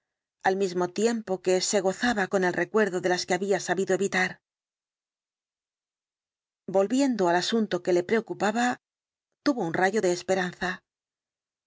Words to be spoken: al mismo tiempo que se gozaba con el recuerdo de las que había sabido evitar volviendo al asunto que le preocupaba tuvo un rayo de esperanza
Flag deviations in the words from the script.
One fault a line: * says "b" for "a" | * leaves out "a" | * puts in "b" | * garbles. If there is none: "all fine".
all fine